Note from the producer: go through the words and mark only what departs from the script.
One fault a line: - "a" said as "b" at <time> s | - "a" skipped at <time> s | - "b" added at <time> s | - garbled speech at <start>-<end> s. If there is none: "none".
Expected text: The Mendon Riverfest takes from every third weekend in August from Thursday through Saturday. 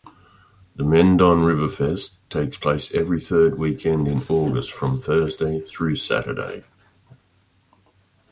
- "from" said as "place" at 2.6 s